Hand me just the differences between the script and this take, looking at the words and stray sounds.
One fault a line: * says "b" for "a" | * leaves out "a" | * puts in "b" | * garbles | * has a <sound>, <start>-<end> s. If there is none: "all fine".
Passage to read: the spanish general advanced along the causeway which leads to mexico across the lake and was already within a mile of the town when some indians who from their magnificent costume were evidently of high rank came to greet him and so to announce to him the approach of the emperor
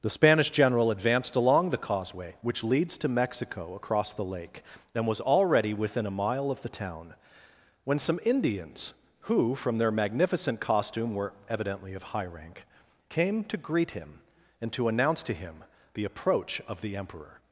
* leaves out "so"